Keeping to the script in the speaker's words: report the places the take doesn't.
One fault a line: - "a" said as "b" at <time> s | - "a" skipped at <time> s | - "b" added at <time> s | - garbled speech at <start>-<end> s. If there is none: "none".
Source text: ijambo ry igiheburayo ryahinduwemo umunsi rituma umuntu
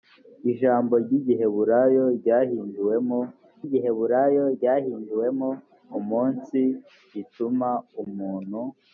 - "igiheburayo ryahinduwemo" added at 3.6 s